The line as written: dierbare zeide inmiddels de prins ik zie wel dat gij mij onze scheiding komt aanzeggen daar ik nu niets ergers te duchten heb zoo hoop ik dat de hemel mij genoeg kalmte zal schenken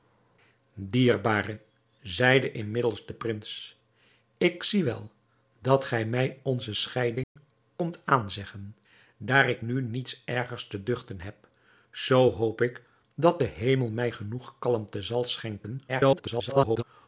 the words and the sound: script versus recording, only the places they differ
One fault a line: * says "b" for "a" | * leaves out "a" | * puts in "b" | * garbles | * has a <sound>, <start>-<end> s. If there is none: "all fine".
* has a dropout, 7.2-7.4 s
* garbles